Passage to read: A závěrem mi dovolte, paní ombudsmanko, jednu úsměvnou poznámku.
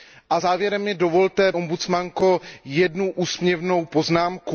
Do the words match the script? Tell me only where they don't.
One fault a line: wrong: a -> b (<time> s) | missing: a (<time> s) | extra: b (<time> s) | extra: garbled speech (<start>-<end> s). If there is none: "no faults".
missing: paní (1.5 s)